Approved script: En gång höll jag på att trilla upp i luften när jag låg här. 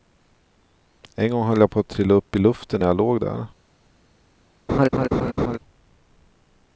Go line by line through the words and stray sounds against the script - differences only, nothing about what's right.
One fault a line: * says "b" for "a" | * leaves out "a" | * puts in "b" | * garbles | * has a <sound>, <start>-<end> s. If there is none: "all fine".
* says "där" for "här"
* has a laugh, 4.7-5.6 s